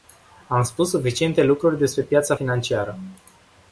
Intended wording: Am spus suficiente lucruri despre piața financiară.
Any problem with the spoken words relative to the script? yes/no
no